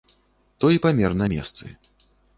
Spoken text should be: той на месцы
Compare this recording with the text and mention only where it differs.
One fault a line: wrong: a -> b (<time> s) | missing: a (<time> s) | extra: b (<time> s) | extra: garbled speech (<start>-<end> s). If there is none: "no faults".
extra: памер (0.9 s)